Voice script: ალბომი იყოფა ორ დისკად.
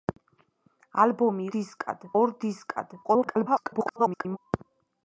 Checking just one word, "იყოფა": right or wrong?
wrong